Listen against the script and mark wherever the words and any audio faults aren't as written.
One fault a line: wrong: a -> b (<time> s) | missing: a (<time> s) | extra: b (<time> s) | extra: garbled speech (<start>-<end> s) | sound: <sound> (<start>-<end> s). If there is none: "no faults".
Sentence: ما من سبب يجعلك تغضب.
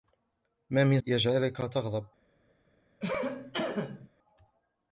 missing: سبب (1.0 s)
sound: cough (3.0-4.1 s)